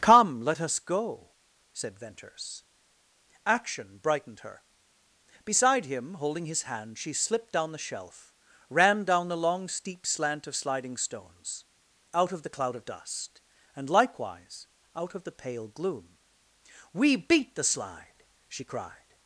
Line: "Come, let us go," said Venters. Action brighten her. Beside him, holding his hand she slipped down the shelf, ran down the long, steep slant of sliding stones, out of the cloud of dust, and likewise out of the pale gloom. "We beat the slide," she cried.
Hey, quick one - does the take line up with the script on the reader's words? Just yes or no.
no